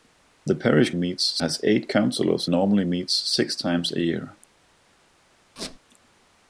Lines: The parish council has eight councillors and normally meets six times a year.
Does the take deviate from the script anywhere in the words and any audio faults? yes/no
yes